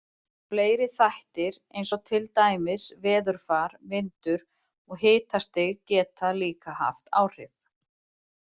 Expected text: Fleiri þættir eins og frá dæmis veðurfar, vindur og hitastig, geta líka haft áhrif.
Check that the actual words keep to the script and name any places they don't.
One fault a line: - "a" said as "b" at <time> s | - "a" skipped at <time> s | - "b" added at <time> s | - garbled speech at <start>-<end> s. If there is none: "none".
- "frá" said as "til" at 2.1 s